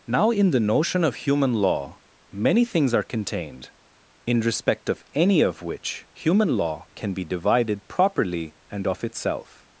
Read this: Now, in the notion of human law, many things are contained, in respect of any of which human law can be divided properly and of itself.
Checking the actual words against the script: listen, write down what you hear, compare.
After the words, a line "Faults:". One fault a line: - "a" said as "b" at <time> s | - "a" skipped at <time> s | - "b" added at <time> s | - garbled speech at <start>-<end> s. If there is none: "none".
Now, in the notion of human law, many things are contained, in respect of any of which human law can be divided properly and of itself.
Faults:
none